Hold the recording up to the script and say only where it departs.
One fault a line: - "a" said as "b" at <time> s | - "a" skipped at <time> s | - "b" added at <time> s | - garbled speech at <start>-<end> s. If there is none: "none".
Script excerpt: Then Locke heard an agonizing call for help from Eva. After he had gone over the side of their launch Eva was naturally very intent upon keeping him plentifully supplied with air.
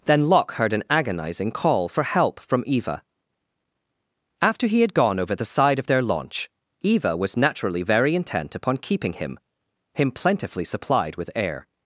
- "him" added at 9.9 s